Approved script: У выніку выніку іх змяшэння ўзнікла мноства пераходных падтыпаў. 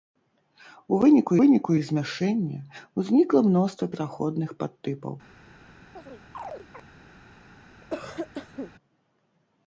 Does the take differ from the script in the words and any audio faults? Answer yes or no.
yes